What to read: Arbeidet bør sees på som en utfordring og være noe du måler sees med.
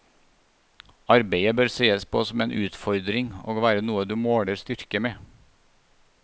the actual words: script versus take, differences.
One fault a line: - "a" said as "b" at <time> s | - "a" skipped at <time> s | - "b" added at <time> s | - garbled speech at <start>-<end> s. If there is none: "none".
- "sees" said as "styrke" at 4.6 s